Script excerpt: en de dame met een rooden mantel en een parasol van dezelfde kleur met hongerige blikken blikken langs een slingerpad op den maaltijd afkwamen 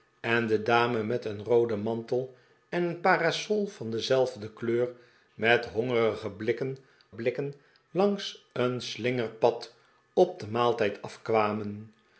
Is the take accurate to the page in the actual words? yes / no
yes